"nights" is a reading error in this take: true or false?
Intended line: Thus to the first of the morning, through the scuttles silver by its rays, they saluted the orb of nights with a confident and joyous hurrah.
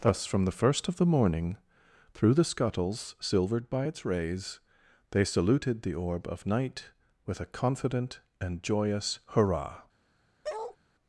true